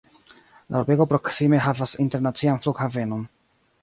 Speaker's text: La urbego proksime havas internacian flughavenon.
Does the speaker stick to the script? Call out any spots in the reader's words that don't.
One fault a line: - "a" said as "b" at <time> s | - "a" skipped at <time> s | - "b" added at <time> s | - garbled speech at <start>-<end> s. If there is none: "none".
none